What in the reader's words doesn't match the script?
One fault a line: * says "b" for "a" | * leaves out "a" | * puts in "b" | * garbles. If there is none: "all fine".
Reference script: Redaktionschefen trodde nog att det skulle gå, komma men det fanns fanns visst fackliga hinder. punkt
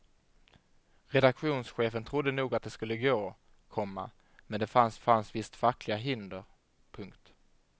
all fine